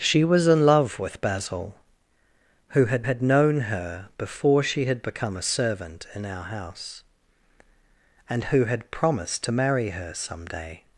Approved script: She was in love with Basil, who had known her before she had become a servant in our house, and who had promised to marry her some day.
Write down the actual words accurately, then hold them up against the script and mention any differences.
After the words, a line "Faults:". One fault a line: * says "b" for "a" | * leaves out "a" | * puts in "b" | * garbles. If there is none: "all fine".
She was in love with Basil, who had had known her before she had become a servant in our house, and who had promised to marry her some day.
Faults:
* puts in "had"